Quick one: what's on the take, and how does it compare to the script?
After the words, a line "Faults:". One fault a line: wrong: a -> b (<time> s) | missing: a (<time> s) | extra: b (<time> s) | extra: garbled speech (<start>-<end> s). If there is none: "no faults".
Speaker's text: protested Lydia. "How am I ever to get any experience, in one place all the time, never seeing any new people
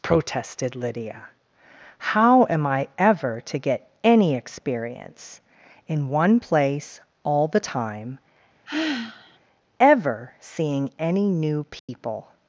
protested Lydia. "How am I ever to get any experience, in one place all the time, ever seeing any new people
Faults:
wrong: never -> ever (9.8 s)